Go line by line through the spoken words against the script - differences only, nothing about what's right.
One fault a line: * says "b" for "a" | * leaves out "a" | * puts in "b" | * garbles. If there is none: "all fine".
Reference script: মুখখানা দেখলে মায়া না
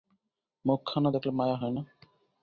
* puts in "হয়"